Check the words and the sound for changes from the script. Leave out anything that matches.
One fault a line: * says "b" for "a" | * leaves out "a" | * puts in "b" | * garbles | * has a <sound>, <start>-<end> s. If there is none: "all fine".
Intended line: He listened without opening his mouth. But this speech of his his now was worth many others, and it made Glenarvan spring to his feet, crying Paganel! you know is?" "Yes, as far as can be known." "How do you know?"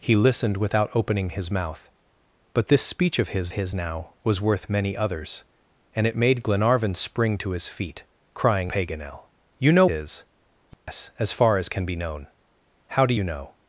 * has a dropout, 10.7-10.9 s